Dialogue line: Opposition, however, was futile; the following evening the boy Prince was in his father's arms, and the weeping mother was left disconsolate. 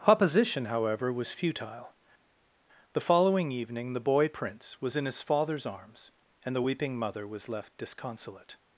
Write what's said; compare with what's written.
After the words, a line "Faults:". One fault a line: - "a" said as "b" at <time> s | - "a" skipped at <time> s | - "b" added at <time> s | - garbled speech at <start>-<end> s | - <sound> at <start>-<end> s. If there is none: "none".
Opposition, however, was futile; the following evening the boy Prince was in his father's arms, and the weeping mother was left disconsolate.
Faults:
none